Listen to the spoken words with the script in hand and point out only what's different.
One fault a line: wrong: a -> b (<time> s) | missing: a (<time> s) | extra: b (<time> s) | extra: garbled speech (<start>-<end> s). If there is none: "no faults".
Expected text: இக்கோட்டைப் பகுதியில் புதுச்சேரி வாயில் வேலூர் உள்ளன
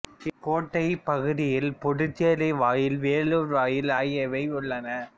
extra: வாயில் ஆகியவை (3.5 s)